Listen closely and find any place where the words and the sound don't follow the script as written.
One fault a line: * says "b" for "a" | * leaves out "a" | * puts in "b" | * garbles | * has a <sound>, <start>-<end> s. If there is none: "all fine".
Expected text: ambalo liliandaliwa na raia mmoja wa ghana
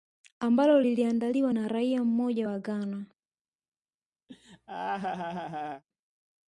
* has a laugh, 4.3-5.8 s